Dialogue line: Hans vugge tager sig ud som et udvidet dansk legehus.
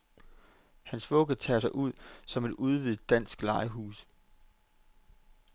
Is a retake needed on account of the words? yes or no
no